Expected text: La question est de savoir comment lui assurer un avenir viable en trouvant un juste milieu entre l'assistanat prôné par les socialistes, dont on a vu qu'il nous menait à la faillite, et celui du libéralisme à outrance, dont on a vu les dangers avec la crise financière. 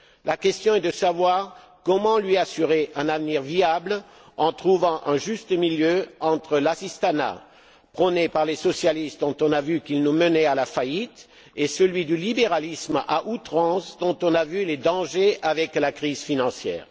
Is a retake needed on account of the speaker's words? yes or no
no